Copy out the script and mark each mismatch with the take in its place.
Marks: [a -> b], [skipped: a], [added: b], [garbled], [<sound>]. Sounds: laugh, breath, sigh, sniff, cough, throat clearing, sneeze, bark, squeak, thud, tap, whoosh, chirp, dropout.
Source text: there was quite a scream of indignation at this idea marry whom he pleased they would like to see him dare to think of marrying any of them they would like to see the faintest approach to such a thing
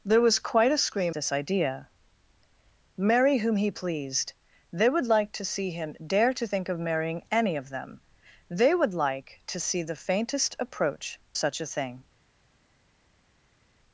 there was quite a scream [skipped: of indignation at] this idea marry whom he pleased they would like to see him dare to think of marrying any of them they would like to see the faintest approach [skipped: to] such a thing